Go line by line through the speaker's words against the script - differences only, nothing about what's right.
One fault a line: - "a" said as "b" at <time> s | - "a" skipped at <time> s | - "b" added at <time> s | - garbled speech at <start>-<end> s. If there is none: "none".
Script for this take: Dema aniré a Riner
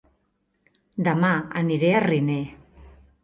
none